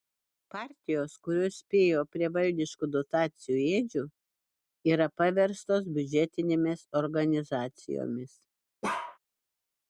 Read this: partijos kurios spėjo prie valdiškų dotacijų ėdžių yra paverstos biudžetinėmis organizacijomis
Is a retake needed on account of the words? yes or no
no